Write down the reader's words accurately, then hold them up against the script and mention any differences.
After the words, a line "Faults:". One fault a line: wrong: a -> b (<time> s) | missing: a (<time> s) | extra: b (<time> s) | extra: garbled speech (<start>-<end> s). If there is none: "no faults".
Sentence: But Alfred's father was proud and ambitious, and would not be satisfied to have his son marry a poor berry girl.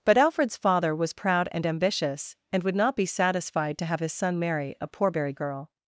But Alfred's father was proud and ambitious, and would not be satisfied to have his son marry a poor berry girl.
Faults:
no faults